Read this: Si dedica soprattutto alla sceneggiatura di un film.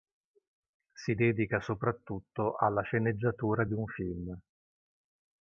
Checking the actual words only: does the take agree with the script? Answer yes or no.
yes